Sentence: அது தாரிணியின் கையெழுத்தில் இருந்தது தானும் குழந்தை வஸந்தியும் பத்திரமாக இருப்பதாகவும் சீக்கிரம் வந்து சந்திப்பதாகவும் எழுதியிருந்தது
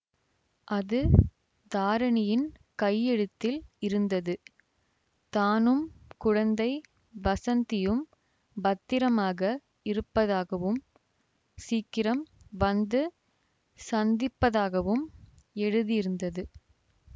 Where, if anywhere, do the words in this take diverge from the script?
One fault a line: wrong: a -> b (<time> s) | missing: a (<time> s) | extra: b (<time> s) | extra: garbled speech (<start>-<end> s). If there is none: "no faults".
no faults